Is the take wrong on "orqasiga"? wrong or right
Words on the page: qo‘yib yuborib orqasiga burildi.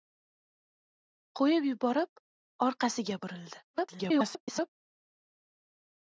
right